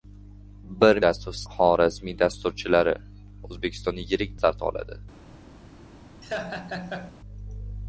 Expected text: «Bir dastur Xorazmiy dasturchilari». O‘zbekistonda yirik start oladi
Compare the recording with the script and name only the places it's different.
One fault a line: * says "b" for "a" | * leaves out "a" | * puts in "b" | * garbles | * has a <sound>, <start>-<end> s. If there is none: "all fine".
* has a laugh, 6.2-7.1 s